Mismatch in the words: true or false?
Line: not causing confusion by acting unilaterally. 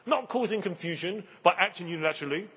false